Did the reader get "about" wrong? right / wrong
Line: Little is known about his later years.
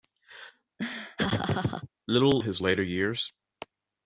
wrong